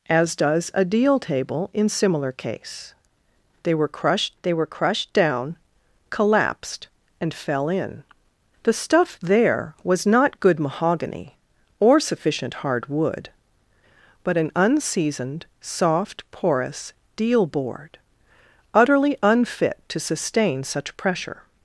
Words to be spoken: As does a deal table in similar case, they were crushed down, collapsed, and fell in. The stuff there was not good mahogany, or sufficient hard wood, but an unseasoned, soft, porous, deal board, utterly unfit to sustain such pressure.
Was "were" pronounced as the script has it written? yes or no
yes